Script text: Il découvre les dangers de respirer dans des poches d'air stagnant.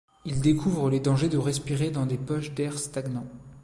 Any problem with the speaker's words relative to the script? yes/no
no